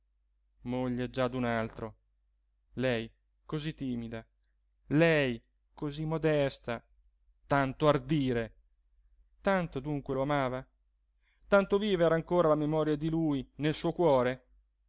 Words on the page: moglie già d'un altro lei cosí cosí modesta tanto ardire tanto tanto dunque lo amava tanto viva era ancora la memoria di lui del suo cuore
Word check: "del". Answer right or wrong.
wrong